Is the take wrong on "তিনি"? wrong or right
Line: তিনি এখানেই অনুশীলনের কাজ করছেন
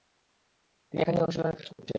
right